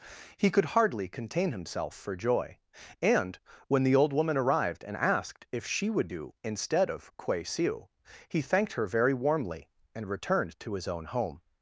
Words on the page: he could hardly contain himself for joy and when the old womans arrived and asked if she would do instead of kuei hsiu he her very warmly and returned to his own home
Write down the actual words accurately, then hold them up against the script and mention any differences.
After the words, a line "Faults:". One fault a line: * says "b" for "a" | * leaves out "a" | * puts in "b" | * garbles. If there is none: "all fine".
he could hardly contain himself for joy and when the old woman arrived and asked if she would do instead of kuei hsiu he thanked her very warmly and returned to his own home
Faults:
* says "woman" for "womans"
* puts in "thanked"